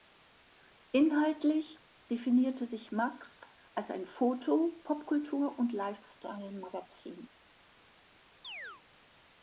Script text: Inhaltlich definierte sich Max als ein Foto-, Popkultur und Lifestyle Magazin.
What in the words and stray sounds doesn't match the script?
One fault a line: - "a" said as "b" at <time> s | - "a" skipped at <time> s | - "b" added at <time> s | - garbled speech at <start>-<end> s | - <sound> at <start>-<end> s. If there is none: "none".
- chirp at 8.4-8.8 s